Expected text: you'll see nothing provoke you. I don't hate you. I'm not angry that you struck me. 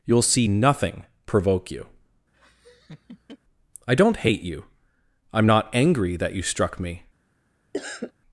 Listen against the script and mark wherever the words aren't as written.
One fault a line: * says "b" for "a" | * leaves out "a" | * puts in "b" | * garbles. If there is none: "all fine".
all fine